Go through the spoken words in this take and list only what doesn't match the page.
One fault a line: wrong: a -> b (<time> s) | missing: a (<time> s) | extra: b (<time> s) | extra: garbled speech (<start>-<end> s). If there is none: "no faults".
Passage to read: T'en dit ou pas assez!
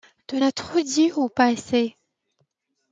extra: as trop (0.4 s)